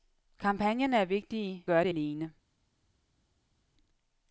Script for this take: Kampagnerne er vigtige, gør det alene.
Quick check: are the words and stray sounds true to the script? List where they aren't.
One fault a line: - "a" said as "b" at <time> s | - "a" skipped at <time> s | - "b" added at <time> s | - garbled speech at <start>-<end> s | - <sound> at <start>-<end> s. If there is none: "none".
none